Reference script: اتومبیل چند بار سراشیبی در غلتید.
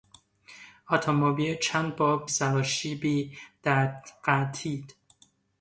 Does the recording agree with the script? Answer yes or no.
yes